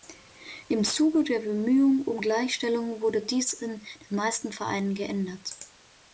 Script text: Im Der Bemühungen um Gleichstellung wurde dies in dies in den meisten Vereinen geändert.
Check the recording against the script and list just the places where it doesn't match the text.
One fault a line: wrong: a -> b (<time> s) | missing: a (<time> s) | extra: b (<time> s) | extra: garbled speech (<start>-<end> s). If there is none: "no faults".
extra: Zuge (0.8 s)
missing: dies in (3.8 s)